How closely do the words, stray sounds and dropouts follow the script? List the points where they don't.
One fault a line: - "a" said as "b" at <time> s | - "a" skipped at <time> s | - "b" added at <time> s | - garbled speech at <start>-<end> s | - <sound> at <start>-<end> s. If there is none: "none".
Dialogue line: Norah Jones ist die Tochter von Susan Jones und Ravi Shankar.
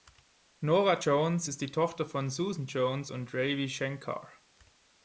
none